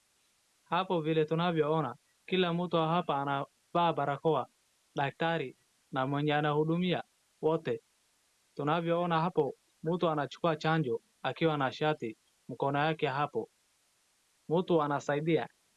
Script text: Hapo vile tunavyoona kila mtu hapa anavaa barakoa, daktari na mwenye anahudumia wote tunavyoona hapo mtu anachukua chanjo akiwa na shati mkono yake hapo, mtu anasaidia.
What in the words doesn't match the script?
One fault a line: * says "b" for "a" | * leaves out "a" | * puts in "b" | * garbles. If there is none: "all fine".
all fine